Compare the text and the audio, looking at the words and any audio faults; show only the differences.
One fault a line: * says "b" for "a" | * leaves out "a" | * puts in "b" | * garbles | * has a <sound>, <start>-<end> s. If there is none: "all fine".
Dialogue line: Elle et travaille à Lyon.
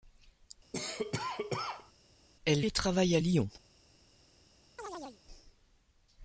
* has a cough, 0.7-1.9 s
* has a chirp, 4.8-5.2 s